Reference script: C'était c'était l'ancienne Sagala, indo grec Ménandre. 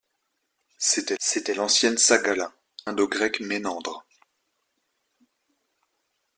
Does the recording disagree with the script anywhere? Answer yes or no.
no